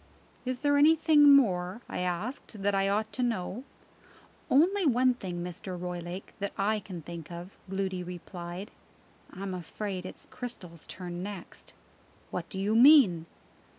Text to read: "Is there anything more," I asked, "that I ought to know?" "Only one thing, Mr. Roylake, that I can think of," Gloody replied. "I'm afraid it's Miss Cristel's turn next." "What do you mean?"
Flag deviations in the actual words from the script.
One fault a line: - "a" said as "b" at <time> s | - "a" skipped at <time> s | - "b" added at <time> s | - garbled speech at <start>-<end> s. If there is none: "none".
- "Miss" skipped at 10.3 s